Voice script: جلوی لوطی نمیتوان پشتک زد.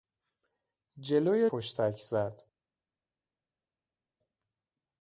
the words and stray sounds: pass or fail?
fail